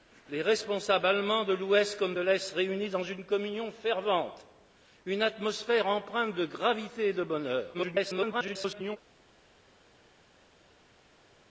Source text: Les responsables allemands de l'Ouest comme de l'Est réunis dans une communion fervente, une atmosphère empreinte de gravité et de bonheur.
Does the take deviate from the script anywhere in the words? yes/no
yes